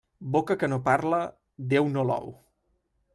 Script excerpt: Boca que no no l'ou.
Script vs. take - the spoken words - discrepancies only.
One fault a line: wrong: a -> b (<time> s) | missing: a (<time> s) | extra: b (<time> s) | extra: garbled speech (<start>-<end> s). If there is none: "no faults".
extra: parla Déu (0.9 s)